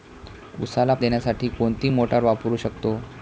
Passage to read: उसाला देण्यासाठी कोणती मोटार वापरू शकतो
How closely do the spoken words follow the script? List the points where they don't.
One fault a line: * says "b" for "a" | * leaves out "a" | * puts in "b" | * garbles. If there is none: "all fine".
all fine